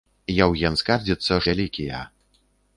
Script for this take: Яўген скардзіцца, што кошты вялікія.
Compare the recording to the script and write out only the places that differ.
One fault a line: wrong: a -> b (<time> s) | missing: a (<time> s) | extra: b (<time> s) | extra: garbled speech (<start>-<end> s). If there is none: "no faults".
missing: што кошты (1.4 s)